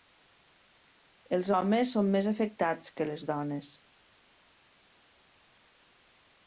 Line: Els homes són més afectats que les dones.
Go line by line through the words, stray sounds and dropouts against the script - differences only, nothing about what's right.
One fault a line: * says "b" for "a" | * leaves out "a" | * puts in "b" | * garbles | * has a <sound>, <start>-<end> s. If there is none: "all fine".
all fine